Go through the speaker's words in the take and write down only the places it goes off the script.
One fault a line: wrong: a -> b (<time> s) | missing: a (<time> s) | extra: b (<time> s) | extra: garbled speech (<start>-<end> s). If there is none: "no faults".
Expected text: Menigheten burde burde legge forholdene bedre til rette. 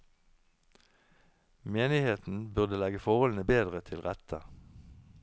missing: burde (2.8 s)